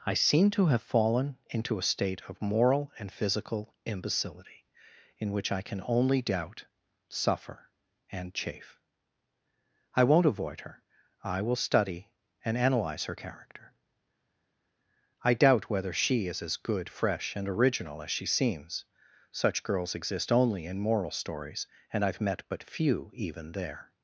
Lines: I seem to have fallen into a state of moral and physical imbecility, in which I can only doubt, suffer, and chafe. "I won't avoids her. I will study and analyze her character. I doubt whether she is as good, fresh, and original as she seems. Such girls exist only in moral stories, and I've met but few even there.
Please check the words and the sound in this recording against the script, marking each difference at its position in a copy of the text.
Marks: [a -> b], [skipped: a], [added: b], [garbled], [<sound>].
I seem to have fallen into a state of moral and physical imbecility, in which I can only doubt, suffer, and chafe. "I won't [avoids -> avoid] her. I will study and analyze her character. I doubt whether she is as good, fresh, and original as she seems. Such girls exist only in moral stories, and I've met but few even there.